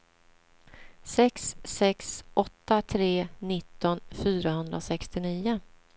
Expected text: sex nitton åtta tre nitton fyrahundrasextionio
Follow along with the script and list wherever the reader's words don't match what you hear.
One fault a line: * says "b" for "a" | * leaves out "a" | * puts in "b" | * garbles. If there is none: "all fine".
* says "sex" for "nitton"